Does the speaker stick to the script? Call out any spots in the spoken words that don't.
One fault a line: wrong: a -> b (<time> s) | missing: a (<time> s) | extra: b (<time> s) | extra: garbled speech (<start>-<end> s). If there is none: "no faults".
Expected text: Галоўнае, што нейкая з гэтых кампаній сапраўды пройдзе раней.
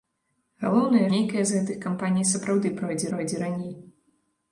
missing: што (1.0 s)
extra: пройдзе (3.1 s)